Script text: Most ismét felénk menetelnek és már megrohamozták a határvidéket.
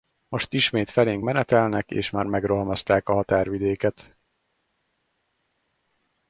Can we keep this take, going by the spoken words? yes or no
yes